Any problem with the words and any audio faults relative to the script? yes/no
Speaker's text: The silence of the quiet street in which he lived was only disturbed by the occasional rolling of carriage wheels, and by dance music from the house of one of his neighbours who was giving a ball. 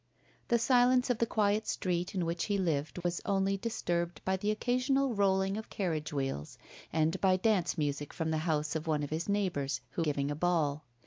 yes